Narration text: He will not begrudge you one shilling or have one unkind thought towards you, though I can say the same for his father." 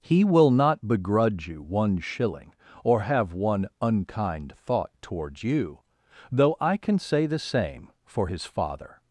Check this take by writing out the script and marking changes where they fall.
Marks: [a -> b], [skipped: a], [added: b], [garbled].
He will not begrudge you one shilling or have one unkind thought towards you, though I can say the same for his father."